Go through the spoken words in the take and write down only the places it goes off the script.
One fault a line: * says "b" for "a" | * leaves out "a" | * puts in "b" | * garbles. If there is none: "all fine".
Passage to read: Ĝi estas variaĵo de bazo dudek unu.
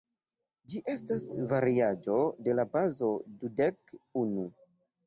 * puts in "la"